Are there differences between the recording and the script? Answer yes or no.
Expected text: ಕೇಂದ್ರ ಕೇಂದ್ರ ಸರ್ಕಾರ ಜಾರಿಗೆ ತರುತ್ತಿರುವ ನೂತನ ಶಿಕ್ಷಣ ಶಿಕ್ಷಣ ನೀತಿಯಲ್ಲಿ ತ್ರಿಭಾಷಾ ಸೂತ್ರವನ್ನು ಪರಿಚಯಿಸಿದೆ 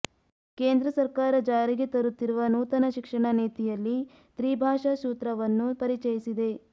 yes